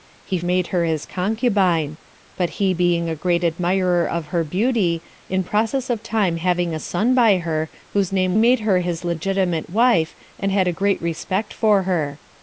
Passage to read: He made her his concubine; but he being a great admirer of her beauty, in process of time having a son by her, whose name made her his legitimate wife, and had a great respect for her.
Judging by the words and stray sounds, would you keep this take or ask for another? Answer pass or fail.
pass